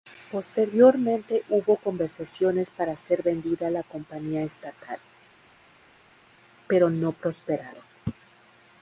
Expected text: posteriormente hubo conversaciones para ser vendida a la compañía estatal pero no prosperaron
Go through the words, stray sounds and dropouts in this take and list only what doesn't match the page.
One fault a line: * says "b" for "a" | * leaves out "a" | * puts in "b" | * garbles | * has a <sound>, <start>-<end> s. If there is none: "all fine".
all fine